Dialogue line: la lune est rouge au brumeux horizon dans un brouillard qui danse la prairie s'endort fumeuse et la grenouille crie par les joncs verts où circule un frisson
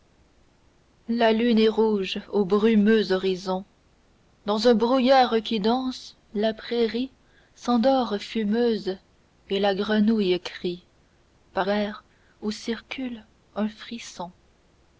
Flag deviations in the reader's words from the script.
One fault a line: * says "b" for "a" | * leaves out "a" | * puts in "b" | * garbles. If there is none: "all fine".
* leaves out "les joncs"